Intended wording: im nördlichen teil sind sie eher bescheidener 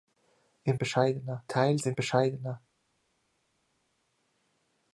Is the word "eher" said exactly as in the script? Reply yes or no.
no